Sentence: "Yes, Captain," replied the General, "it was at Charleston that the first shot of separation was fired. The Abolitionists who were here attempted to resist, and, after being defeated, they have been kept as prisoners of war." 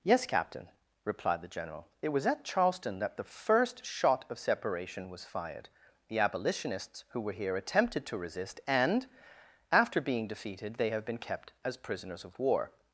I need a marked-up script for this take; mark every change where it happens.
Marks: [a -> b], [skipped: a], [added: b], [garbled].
"Yes, Captain," replied the General, "it was at Charleston that the first shot of separation was fired. The Abolitionists who were here attempted to resist, and, after being defeated, they have been kept as prisoners of war."